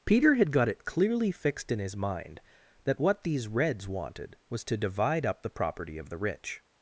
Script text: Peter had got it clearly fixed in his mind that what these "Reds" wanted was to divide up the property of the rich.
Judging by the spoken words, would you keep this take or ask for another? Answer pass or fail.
pass